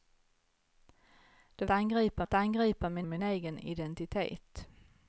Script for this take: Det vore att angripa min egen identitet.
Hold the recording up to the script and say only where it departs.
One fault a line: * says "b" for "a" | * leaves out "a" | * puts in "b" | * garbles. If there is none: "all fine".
* says "angripa" for "vore"
* puts in "min"